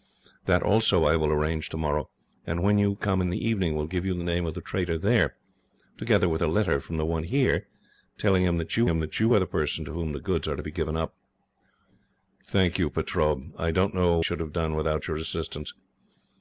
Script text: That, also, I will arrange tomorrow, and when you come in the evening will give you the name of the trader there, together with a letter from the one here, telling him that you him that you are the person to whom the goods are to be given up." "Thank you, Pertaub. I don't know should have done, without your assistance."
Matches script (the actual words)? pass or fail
pass